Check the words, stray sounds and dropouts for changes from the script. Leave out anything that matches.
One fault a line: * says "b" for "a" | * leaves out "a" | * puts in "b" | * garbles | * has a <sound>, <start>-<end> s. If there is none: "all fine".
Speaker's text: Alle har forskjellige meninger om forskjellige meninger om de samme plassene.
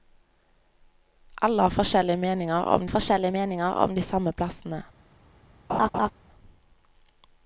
* has a laugh, 5.7-6.1 s